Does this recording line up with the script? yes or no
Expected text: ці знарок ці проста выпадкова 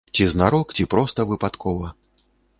yes